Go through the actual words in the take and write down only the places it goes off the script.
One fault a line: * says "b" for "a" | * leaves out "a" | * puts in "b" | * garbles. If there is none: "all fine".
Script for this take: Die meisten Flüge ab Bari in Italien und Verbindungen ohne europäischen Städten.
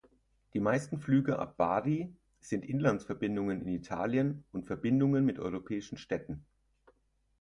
* puts in "sind Inlandsverbindungen"
* says "mit" for "ohne"